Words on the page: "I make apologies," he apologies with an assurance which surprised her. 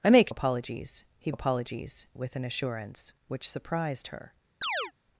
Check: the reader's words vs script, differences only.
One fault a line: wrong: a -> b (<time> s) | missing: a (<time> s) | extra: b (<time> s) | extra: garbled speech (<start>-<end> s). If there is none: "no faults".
no faults